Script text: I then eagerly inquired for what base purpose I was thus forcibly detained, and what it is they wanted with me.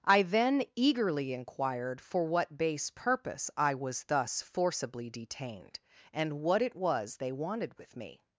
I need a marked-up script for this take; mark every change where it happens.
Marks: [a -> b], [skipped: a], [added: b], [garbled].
I then eagerly inquired for what base purpose I was thus forcibly detained, and what it [is -> was] they wanted with me.